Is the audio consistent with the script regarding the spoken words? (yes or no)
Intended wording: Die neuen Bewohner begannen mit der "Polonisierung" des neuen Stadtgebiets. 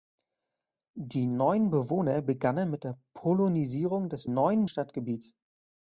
yes